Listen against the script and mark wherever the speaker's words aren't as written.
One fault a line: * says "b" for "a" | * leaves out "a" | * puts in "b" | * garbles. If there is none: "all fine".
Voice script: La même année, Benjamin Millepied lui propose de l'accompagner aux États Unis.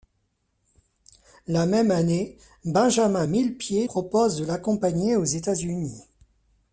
* leaves out "lui"